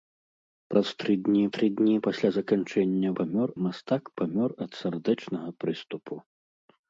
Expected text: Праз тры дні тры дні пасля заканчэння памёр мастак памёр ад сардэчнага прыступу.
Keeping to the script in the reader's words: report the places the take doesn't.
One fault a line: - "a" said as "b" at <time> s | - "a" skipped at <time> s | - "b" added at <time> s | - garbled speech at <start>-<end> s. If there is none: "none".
none